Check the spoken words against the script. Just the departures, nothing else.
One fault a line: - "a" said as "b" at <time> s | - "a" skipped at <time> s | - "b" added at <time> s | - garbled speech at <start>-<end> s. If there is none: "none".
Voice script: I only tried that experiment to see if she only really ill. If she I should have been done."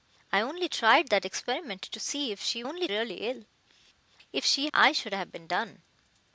none